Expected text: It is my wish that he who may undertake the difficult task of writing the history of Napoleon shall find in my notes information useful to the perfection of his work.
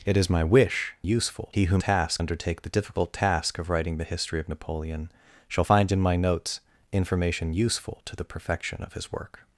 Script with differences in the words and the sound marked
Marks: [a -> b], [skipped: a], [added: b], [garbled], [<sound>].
It is my wish [that -> useful] he who [may -> task] undertake the difficult task of writing the history of Napoleon shall find in my notes information useful to the perfection of his work.